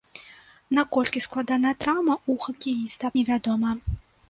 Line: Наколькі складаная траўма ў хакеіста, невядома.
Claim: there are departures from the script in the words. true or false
false